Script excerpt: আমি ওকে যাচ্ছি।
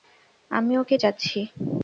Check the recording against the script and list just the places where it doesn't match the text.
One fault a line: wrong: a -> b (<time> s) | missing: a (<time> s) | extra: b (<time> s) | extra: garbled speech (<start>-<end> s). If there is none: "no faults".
no faults